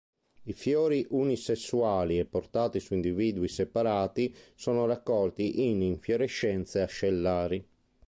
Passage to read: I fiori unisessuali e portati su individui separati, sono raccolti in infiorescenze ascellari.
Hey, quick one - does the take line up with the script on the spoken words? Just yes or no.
yes